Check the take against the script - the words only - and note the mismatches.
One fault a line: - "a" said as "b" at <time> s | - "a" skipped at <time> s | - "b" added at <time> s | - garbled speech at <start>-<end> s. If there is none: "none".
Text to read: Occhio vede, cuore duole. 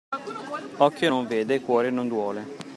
- "non" added at 1.1 s
- "non" added at 1.9 s